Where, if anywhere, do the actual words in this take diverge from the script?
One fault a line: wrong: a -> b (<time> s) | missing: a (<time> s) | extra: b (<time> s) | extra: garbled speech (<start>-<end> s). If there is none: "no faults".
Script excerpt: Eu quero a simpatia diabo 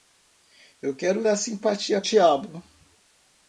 no faults